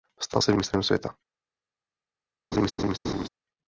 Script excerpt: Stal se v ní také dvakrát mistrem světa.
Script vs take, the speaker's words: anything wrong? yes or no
yes